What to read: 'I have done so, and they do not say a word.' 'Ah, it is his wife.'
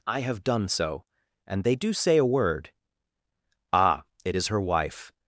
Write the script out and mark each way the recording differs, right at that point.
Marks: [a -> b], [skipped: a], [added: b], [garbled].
'I have done so, and they do [skipped: not] say a word.' 'Ah, it is [his -> her] wife.'